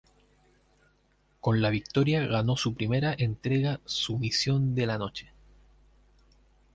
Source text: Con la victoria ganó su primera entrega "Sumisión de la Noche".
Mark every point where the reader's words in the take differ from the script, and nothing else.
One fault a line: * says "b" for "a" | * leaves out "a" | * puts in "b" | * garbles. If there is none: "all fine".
all fine